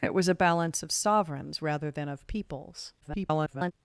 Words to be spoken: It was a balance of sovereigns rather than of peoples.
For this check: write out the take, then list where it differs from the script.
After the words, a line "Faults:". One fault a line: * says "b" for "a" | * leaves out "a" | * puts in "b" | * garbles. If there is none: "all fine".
It was a balance of sovereigns rather than of peoples. [garbled]
Faults:
* garbles